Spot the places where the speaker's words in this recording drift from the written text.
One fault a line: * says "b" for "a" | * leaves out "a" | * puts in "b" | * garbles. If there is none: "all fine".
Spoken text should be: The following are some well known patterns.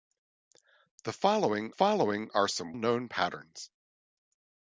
* puts in "following"
* leaves out "well"